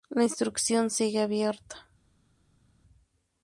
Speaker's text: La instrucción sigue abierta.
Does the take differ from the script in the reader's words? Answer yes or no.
no